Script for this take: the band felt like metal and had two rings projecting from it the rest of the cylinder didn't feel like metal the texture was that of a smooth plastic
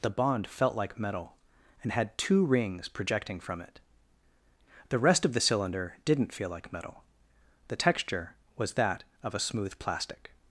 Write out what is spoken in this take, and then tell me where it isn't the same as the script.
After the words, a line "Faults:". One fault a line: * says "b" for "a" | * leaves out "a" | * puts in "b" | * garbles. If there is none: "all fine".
the bond felt like metal and had two rings projecting from it the rest of the cylinder didn't feel like metal the texture was that of a smooth plastic
Faults:
* says "bond" for "band"